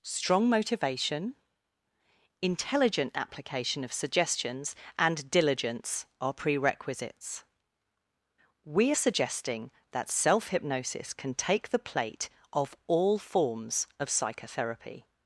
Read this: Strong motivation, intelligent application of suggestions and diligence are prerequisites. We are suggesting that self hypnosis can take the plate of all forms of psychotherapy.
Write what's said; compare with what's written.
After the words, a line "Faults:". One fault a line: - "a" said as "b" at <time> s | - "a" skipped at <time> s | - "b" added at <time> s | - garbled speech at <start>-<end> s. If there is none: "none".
Strong motivation, intelligent application of suggestions and diligence are prerequisites. We are suggesting that self hypnosis can take the plate of all forms of psychotherapy.
Faults:
none